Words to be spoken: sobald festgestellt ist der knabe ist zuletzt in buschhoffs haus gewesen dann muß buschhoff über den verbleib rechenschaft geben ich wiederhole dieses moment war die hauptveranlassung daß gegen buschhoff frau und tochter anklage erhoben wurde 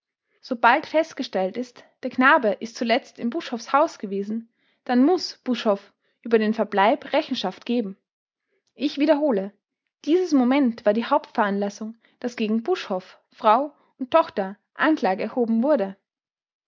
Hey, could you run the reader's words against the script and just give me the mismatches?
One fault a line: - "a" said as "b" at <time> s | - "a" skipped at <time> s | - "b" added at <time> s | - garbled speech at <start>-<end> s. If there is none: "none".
none